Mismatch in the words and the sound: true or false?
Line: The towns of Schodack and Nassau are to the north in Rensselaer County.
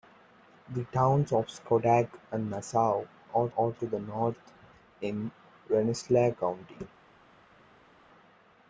true